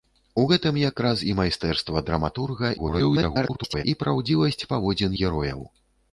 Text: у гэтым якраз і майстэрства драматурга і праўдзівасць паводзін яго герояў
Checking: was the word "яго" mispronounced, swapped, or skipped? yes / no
yes